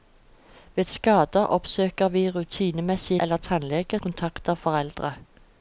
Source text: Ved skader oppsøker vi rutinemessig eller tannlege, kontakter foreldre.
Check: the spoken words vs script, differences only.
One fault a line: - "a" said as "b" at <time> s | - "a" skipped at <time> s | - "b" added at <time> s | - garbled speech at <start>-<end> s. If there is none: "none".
none